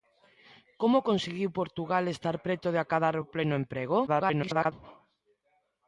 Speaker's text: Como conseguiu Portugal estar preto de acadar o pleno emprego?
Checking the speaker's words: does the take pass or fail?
fail